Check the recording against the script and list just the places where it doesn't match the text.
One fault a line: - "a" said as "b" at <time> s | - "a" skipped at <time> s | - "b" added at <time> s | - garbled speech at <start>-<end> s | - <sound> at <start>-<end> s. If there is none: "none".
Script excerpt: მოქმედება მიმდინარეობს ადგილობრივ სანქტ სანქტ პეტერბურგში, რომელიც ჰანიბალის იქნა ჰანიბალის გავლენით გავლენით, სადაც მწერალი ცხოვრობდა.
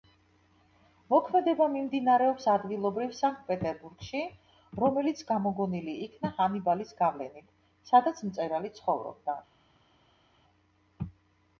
- "სანქტ" skipped at 3.4 s
- "ჰანიბალის" said as "გამოგონილი" at 5.3 s
- "გავლენით" skipped at 7.5 s